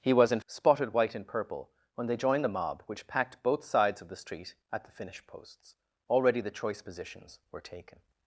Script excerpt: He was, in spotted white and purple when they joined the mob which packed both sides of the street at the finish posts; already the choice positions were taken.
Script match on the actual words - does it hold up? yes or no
yes